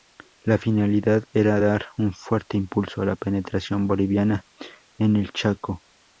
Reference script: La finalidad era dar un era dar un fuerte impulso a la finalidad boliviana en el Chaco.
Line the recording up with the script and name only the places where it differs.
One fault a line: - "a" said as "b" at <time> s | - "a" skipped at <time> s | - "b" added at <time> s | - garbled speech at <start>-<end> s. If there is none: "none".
- "era dar un" skipped at 2.1 s
- "finalidad" said as "penetración" at 3.2 s